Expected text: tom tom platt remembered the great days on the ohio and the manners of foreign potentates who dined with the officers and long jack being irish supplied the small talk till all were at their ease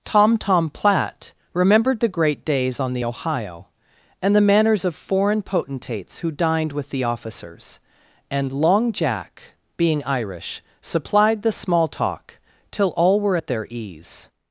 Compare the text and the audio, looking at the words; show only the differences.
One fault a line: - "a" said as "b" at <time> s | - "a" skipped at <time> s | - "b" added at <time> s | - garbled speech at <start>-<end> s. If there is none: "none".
none